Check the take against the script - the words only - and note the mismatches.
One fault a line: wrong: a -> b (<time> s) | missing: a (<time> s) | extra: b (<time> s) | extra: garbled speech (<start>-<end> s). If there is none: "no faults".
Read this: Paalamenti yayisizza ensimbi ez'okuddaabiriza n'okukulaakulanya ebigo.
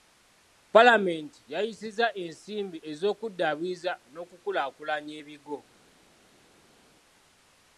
no faults